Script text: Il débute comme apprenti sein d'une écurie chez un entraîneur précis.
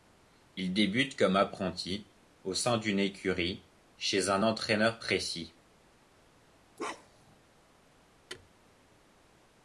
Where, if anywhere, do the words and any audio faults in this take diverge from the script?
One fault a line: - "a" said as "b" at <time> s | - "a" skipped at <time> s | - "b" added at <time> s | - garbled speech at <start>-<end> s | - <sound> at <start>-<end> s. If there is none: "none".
- "au" added at 2.4 s
- bark at 6.8-7.4 s
- thud at 8.3-8.5 s